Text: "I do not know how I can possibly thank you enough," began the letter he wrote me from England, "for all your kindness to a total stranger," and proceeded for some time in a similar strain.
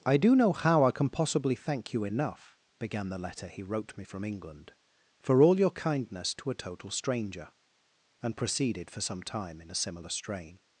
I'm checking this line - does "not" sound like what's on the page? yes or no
no